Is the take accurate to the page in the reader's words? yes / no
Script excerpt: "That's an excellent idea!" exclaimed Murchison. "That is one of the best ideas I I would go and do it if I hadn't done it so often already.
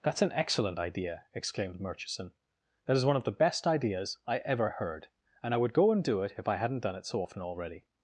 no